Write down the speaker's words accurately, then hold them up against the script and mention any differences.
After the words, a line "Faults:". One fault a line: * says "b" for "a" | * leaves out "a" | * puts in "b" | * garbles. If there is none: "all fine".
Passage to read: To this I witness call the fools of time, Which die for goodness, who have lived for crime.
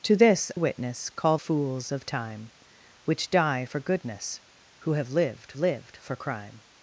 To this witness call fools of time, Which die for goodness, who have lived lived for crime.
Faults:
* leaves out "I"
* leaves out "the"
* puts in "lived"